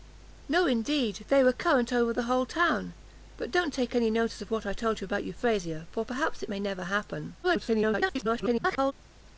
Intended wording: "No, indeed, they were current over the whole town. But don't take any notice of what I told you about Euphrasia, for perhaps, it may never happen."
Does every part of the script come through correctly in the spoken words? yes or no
no